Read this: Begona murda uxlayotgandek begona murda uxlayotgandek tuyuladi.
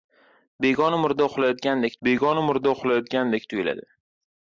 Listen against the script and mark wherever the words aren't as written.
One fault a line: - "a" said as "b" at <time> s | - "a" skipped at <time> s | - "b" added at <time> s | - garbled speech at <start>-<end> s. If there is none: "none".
none